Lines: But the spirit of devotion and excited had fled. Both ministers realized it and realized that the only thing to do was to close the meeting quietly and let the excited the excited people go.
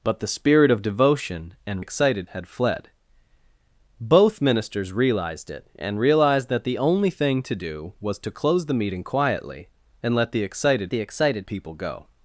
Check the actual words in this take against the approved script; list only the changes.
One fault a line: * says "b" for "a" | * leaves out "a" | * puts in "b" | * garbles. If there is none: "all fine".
all fine